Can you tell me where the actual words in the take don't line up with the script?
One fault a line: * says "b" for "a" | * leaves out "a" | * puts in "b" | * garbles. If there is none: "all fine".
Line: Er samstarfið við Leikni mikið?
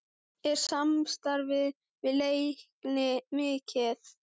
all fine